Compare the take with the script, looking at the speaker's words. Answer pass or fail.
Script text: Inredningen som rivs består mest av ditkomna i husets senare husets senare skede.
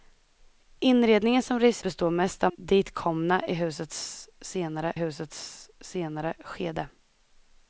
pass